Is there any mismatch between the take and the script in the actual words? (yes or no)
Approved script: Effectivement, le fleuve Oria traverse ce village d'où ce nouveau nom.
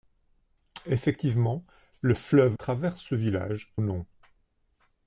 yes